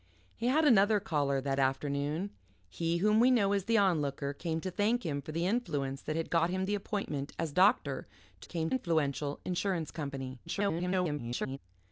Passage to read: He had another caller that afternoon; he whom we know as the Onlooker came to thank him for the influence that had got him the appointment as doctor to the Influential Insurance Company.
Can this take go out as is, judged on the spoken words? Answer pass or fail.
fail